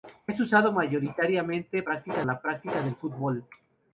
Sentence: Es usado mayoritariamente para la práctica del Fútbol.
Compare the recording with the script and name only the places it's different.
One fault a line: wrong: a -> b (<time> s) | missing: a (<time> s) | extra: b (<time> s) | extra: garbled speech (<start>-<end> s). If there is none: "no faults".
wrong: para -> práctica (1.8 s)